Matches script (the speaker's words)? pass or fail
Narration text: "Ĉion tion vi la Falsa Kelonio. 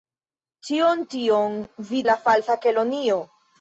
pass